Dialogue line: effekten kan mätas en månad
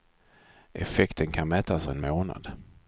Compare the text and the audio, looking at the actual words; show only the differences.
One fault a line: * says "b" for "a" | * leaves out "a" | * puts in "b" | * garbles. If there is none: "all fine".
all fine